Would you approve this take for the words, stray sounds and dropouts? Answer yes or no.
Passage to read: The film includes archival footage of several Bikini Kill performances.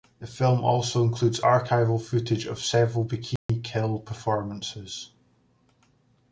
no